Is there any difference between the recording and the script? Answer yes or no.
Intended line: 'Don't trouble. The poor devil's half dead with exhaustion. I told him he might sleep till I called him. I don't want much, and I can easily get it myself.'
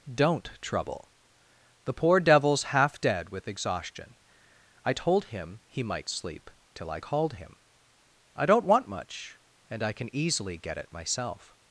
no